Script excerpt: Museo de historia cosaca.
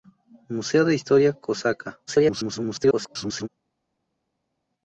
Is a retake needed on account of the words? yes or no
yes